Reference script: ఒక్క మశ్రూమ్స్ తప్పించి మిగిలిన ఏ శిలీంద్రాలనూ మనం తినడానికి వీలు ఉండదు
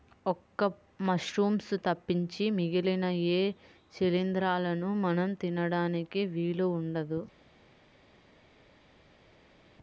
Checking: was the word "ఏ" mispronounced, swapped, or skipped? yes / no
no